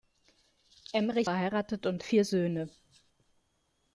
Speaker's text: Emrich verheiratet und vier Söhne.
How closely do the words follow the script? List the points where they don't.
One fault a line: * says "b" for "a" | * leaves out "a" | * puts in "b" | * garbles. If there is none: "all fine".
all fine